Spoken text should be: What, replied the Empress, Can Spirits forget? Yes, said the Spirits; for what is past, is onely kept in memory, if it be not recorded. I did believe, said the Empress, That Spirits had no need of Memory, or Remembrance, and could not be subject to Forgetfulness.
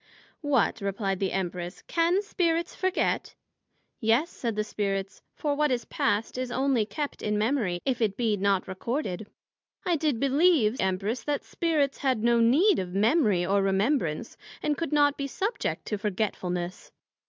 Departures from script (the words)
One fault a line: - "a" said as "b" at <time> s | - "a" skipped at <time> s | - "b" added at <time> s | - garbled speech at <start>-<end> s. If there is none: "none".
- "said the" skipped at 10.8 s